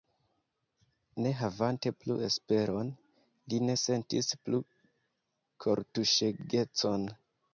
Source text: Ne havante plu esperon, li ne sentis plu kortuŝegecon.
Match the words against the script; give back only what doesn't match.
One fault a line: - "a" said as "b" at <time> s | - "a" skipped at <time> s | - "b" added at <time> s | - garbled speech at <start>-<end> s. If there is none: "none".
none